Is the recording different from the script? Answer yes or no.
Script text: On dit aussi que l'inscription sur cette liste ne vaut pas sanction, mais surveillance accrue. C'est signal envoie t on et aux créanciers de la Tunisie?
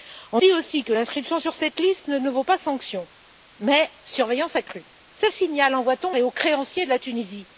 no